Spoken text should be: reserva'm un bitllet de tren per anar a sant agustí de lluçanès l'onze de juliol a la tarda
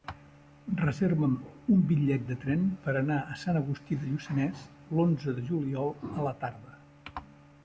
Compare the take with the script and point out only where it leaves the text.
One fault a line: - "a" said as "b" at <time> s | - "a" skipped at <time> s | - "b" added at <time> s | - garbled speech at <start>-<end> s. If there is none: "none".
none